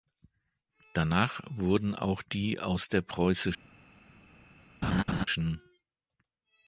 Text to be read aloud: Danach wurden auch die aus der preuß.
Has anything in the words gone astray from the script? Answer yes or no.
no